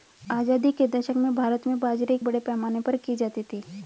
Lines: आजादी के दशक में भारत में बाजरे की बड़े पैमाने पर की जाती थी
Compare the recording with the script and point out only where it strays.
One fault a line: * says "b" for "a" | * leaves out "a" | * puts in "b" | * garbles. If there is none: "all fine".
all fine